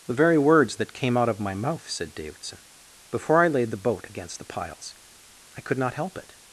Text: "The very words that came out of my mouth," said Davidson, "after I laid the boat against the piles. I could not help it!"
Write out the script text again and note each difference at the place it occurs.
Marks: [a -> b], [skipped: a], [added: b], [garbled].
"The very words that came out of my mouth," said Davidson, ["after -> before] I laid the boat against the piles. I could not help it!"